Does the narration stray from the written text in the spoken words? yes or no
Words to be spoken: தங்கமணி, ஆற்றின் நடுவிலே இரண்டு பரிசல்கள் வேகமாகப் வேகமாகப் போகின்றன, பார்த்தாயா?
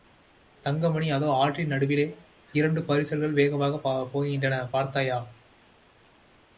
yes